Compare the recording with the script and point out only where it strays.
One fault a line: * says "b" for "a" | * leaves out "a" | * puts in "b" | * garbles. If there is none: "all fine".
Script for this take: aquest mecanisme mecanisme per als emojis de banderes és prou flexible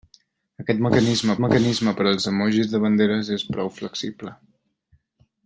all fine